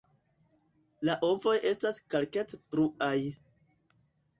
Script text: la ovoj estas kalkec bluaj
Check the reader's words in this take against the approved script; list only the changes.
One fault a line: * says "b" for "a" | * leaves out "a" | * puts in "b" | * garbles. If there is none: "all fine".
all fine